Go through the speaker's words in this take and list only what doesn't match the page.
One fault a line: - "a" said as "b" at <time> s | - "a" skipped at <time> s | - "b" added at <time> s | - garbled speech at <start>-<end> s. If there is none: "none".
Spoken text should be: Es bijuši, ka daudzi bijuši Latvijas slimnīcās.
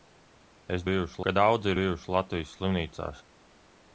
none